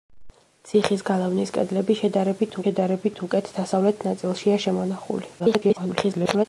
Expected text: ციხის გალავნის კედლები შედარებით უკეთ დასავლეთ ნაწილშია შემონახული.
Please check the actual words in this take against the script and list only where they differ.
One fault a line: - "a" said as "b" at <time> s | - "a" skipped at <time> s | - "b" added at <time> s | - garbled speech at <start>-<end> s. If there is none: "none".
- "შედარებით" added at 2.6 s
- garbled speech at 5.4-6.5 s